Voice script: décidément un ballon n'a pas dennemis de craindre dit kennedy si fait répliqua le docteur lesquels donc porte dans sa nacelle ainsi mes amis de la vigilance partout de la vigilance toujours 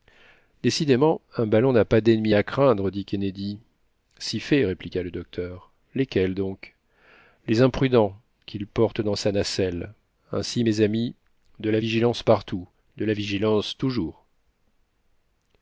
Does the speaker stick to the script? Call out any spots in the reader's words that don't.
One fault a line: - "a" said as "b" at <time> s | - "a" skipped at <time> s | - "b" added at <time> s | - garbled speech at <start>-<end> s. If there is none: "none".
- "de" said as "à" at 2.3 s
- "les imprudents qu'il" added at 7.5 s